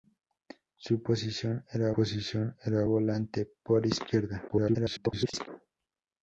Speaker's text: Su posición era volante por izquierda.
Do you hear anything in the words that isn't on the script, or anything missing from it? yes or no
yes